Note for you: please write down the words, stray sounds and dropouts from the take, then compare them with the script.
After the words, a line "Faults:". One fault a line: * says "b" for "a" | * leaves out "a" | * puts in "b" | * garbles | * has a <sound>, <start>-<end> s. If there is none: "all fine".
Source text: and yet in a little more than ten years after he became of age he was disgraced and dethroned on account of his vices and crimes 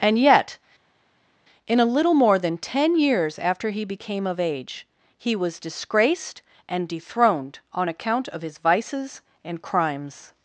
and yet in a little more than ten years after he became of age he was disgraced and dethroned on account of his vices and crimes
Faults:
all fine